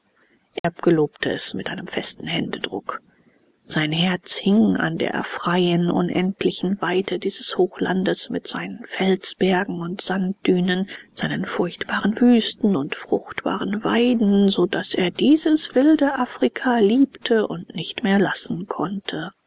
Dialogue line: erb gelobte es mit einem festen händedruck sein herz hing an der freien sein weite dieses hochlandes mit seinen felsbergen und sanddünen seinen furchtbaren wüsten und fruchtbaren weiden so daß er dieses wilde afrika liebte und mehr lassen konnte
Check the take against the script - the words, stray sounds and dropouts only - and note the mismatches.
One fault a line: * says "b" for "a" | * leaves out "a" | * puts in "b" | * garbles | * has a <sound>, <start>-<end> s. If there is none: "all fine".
* has a dropout, 0.6-0.6 s
* says "unendlichen" for "sein"
* puts in "nicht"